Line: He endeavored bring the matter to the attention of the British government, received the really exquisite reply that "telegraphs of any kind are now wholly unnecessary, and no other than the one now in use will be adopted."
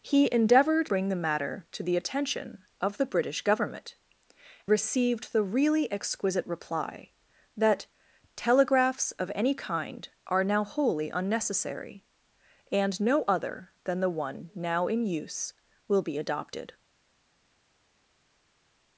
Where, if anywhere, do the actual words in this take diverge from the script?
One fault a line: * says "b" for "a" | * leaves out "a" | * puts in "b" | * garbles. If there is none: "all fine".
all fine